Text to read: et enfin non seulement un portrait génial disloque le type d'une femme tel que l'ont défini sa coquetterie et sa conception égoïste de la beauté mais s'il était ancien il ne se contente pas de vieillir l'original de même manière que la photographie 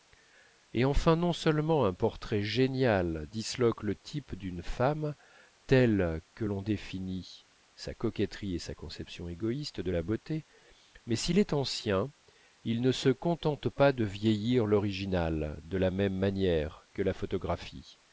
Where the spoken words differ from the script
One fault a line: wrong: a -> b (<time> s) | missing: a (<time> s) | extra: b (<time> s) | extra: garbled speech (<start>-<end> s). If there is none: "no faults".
wrong: était -> est (11.4 s)
extra: la (15.8 s)